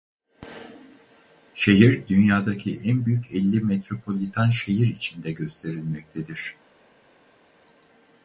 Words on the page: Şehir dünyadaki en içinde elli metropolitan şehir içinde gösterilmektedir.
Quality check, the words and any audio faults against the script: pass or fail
fail